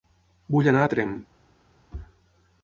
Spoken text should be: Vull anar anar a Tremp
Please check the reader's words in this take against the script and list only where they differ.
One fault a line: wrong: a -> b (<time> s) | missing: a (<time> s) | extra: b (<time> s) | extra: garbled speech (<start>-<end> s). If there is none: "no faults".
missing: anar (0.8 s)